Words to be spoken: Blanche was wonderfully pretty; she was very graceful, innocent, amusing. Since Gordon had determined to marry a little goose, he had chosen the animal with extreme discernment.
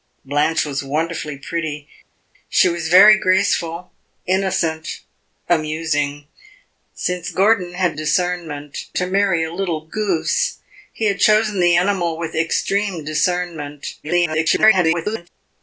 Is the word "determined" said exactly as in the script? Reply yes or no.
no